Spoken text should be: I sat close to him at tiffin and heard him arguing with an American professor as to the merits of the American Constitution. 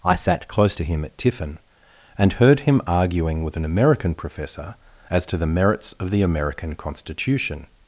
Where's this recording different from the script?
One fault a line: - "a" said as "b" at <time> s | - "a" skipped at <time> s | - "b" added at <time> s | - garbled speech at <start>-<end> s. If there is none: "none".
none